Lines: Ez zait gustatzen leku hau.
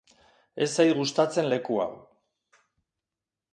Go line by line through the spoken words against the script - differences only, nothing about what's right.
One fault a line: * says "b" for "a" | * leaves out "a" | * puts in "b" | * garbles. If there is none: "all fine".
all fine